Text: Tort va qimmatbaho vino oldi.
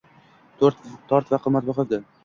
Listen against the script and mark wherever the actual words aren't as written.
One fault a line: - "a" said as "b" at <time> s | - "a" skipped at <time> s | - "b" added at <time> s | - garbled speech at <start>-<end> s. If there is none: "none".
- "vino" skipped at 1.9 s